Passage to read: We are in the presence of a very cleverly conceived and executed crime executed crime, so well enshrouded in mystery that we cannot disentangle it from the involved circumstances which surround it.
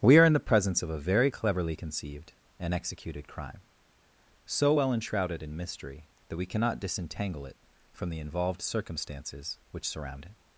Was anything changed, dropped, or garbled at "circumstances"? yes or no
no